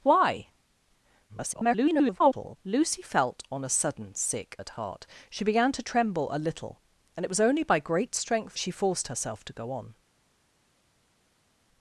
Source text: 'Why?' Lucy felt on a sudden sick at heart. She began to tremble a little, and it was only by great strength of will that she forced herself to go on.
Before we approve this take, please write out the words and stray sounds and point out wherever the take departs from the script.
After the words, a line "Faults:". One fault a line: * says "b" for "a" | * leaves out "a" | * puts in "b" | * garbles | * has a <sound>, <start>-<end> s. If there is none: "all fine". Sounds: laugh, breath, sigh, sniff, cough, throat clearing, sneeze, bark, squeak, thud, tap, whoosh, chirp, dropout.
'Why?' [garbled] Lucy felt on a sudden sick at heart. She began to tremble a little, and it was only by great strength she forced herself to go on.
Faults:
* garbles
* leaves out "of will that"